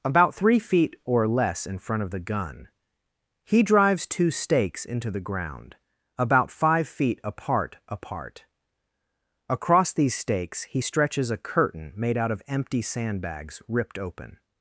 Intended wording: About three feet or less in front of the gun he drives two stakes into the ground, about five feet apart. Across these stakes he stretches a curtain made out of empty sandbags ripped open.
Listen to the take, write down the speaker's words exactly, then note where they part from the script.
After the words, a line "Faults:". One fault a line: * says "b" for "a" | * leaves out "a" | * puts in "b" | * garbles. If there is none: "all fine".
About three feet or less in front of the gun he drives two stakes into the ground, about five feet apart apart. Across these stakes he stretches a curtain made out of empty sandbags ripped open.
Faults:
* puts in "apart"